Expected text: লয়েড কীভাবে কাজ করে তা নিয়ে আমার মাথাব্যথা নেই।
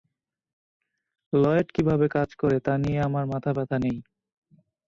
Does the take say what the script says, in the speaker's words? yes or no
yes